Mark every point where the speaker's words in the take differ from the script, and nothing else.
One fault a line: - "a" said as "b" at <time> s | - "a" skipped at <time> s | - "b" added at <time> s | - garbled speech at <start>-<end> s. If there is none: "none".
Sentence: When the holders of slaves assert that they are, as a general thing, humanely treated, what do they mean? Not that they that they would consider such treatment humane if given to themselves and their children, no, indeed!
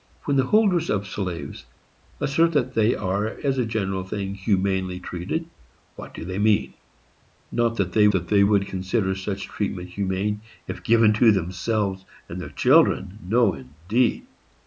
none